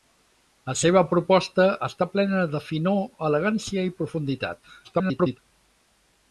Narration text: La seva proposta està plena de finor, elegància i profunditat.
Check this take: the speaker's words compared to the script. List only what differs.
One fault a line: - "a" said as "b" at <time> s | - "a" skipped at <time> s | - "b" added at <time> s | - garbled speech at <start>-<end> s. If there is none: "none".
- garbled speech at 4.8-5.4 s